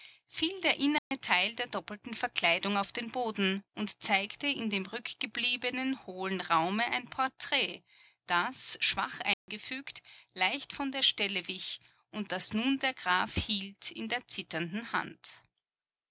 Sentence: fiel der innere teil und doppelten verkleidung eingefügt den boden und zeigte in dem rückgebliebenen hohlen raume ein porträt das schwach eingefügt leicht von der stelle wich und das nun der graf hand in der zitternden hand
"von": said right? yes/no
yes